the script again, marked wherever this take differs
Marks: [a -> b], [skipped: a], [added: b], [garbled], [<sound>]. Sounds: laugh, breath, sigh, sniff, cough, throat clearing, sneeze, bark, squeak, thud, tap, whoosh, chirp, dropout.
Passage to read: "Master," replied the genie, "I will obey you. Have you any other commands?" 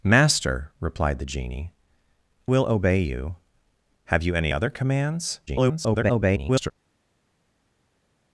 "Master," replied the genie, [skipped: "I] will obey you. Have you any other commands?" [garbled]